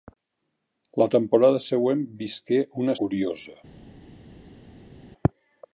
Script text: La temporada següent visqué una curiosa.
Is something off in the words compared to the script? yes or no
no